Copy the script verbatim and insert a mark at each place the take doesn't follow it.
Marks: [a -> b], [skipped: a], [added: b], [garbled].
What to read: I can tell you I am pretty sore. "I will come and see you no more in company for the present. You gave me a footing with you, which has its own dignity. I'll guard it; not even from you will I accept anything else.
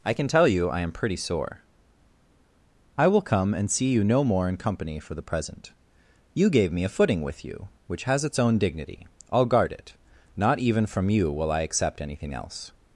I can tell you I am pretty sore. "I will come and see you no more in company for the present. You gave me a footing with you, which has its own dignity. I'll guard it; not even from you will I accept anything else.